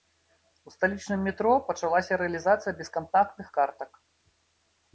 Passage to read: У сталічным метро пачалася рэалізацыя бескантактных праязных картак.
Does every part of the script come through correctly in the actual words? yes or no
no